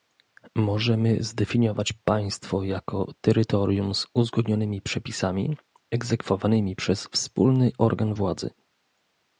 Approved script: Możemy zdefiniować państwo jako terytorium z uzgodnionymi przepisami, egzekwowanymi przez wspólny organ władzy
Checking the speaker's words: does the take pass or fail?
pass